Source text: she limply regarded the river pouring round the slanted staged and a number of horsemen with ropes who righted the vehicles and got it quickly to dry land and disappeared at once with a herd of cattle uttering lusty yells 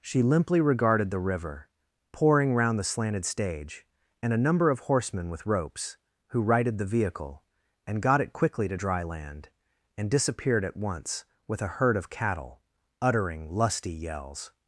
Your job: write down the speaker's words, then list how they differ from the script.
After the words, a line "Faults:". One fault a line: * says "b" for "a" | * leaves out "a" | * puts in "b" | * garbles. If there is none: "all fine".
she limply regarded the river pouring round the slanted stage and a number of horsemen with ropes who righted the vehicle and got it quickly to dry land and disappeared at once with a herd of cattle uttering lusty yells
Faults:
* says "stage" for "staged"
* says "vehicle" for "vehicles"